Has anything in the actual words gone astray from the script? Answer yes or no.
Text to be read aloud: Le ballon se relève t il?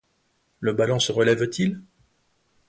no